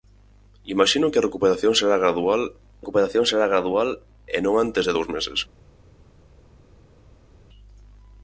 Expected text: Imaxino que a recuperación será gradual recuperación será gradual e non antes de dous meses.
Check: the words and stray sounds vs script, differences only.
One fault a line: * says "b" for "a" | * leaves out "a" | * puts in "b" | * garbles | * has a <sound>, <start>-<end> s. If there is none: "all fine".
all fine